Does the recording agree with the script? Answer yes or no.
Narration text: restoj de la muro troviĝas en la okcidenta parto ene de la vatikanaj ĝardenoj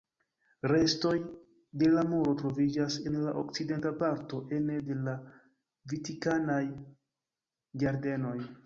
yes